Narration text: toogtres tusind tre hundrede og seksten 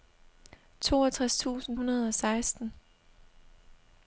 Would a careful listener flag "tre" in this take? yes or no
yes